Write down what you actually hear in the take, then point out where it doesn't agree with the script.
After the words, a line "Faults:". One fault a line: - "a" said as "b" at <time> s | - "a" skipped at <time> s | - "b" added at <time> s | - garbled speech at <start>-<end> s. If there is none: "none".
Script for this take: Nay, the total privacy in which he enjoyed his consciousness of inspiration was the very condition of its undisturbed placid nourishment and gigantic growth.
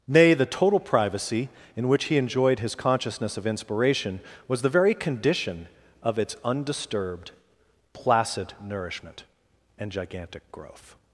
Nay, the total privacy in which he enjoyed his consciousness of inspiration was the very condition of its undisturbed placid nourishment and gigantic growth.
Faults:
none